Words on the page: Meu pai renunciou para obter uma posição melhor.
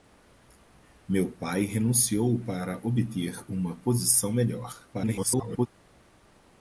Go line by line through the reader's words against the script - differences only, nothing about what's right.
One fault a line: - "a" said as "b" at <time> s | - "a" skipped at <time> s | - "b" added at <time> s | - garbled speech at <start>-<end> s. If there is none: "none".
- garbled speech at 4.9-5.7 s